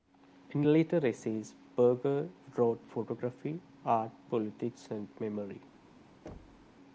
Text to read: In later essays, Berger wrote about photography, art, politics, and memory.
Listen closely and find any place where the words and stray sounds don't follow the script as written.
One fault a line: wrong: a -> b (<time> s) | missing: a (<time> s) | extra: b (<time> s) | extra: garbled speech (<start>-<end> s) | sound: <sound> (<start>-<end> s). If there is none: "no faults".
missing: about (2.9 s)
sound: thud (6.3-6.8 s)